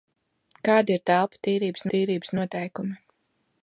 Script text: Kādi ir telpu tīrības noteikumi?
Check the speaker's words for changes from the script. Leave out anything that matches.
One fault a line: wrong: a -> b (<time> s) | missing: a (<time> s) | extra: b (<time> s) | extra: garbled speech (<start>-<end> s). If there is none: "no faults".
extra: tīrības (2.0 s)